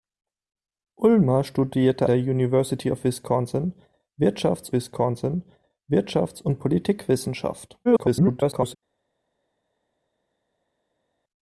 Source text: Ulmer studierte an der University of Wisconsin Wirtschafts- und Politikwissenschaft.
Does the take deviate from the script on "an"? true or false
true